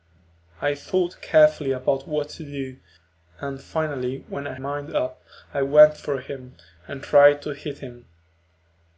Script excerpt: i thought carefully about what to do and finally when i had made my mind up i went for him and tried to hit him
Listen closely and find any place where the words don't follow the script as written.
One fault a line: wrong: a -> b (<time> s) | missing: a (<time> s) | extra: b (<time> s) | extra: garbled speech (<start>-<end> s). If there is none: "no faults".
missing: had made my (4.5 s)